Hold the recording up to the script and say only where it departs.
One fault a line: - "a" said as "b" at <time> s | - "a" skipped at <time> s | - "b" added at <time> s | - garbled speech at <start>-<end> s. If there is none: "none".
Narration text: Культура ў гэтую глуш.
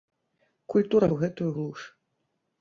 none